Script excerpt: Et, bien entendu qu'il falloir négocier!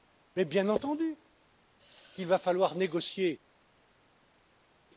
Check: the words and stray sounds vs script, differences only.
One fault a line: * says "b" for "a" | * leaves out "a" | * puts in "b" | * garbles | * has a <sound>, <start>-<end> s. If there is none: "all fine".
* says "Mais" for "Et"
* puts in "va"